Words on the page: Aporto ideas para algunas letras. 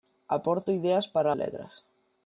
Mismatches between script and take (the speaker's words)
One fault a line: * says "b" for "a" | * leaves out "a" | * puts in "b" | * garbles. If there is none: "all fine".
* leaves out "algunas"